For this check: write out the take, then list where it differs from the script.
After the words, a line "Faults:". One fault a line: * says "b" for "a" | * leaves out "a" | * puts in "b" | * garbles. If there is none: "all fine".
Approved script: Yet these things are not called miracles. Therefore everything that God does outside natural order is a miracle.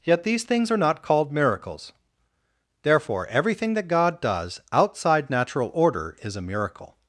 Yet these things are not called miracles. Therefore everything that God does outside natural order is a miracle.
Faults:
all fine